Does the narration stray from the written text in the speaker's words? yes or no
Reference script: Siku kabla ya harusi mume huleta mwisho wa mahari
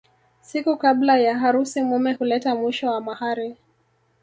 no